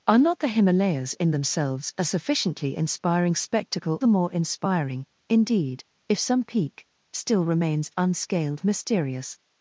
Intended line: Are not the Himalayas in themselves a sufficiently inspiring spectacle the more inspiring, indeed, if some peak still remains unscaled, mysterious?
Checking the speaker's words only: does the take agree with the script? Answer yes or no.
yes